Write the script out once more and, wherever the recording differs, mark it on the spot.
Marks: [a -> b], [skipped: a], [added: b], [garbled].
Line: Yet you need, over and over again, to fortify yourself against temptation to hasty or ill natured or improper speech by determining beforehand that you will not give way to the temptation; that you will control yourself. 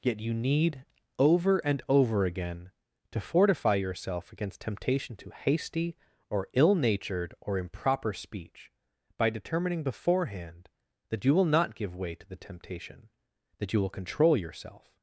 Yet you need, over and over again, to fortify yourself against temptation to hasty or ill natured or improper speech by determining beforehand that you will not give way to the temptation; that you will control yourself.